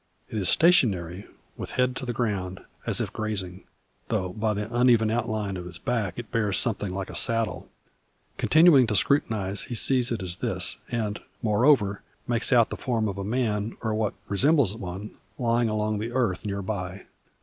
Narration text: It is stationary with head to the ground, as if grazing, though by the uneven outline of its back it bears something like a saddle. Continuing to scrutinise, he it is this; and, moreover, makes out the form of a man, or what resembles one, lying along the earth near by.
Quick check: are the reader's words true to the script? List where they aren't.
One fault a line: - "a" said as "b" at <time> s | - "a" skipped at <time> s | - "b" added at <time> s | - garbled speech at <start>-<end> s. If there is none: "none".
- "sees" added at 9.7 s